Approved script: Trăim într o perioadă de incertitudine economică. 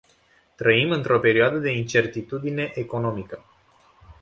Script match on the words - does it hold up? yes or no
yes